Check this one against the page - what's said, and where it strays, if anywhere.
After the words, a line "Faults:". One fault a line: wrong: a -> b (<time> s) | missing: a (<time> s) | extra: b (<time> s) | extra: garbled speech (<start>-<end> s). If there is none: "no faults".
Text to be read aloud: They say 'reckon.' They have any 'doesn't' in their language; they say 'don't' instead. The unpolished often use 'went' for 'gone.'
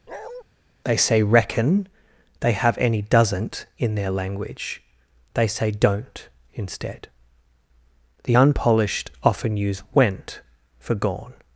They say 'reckon.' They have any 'doesn't' in their language; they say 'don't' instead. The unpolished often use 'went' for 'gone.'
Faults:
no faults